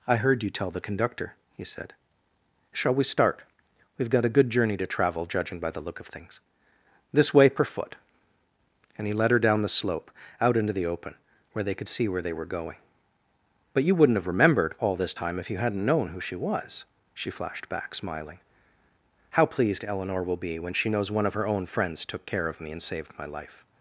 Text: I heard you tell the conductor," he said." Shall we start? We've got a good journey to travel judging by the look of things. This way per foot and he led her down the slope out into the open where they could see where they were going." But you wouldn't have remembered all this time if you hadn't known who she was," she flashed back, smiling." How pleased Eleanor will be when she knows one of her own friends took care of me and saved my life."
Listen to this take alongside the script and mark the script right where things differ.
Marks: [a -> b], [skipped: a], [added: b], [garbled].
I heard you tell the conductor," he said." Shall we start? We've got a good journey to travel judging by the look of things. This way per foot and he led her down the slope out into the open where they could see where they were going." But you wouldn't have remembered all this time if you hadn't known who she was," she flashed back, smiling." How pleased Eleanor will be when she knows one of her own friends took care of me and saved my life."